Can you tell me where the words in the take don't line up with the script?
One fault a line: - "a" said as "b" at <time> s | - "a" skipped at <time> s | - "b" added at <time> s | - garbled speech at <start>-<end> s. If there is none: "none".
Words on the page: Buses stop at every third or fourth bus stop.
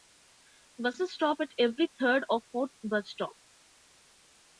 none